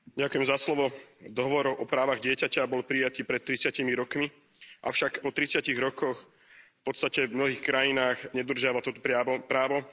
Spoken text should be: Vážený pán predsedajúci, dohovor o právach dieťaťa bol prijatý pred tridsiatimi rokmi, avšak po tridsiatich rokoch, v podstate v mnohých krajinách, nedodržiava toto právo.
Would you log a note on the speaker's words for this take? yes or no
no